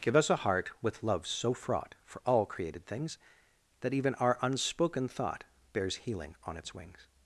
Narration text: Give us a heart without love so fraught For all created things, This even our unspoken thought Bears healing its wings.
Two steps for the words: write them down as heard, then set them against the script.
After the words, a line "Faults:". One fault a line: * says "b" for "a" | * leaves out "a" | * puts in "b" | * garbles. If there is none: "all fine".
Give us a heart with love so fraught For all created things, That even our unspoken thought Bears healing on its wings.
Faults:
* says "with" for "without"
* says "That" for "This"
* puts in "on"